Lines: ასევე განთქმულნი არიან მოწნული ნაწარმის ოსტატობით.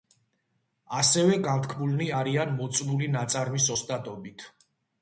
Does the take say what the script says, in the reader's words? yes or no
yes